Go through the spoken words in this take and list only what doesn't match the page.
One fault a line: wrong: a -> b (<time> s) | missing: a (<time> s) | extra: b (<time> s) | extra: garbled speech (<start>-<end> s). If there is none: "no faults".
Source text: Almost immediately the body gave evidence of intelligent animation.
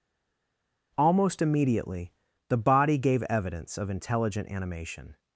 no faults